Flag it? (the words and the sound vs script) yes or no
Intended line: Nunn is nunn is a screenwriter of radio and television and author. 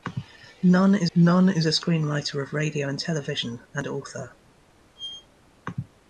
yes